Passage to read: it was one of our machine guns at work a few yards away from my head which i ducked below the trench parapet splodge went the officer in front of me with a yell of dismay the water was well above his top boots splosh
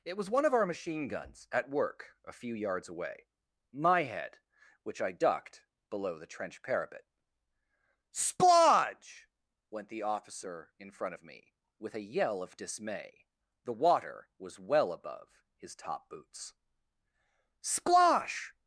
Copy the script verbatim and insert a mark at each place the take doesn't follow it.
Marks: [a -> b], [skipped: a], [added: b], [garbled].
it was one of our machine guns at work a few yards away [skipped: from] my head which i ducked below the trench parapet splodge went the officer in front of me with a yell of dismay the water was well above his top boots splosh